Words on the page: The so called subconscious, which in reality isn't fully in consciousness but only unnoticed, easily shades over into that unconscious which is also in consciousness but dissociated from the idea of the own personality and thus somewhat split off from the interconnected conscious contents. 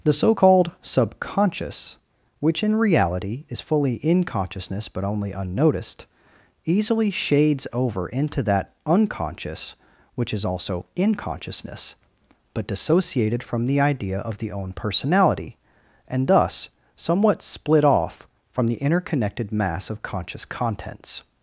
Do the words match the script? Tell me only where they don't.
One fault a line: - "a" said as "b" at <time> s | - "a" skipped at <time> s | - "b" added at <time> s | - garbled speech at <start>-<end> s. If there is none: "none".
- "isn't" said as "is" at 3.5 s
- "mass of" added at 19.5 s